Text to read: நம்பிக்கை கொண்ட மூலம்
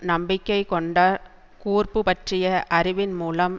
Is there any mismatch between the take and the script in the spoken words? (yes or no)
yes